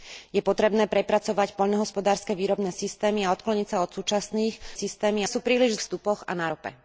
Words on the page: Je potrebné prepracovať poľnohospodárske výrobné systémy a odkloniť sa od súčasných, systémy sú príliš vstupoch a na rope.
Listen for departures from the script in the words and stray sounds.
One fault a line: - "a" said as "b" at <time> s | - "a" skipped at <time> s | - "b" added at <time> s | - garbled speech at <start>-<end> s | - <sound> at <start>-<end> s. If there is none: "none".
none